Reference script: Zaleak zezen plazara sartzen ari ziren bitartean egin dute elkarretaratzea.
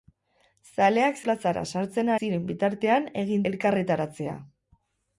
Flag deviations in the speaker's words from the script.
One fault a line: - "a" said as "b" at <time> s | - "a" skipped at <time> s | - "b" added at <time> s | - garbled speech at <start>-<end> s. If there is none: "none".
- "zezen" skipped at 1.2 s
- "ari" skipped at 2.1 s
- "dute" skipped at 3.4 s